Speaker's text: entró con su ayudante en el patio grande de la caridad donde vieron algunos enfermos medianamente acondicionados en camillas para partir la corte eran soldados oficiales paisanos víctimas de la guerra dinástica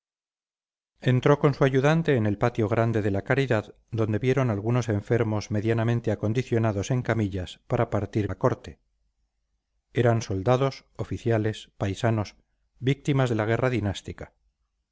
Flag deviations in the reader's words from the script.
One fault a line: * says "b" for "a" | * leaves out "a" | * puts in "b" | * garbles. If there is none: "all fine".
all fine